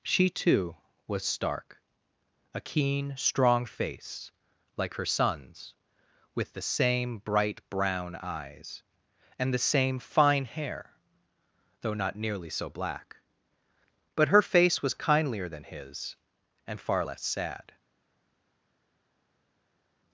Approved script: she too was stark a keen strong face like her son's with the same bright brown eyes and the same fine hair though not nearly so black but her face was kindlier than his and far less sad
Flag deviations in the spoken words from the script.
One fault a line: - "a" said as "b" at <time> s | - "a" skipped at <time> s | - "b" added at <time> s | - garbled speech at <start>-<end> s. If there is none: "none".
none